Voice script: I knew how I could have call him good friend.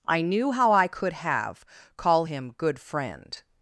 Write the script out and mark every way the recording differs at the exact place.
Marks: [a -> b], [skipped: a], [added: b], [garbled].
I knew how I could have call him good friend.